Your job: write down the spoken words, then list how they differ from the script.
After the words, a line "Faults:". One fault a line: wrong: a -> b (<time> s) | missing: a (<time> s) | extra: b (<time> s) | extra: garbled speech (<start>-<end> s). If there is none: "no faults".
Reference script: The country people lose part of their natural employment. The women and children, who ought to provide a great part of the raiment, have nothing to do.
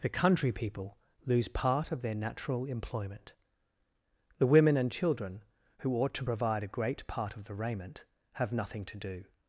The country people lose part of their natural employment. The women and children, who ought to provide a great part of the raiment, have nothing to do.
Faults:
no faults